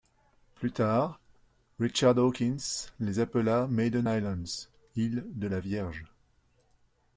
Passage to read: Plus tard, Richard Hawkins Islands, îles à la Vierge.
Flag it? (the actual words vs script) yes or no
yes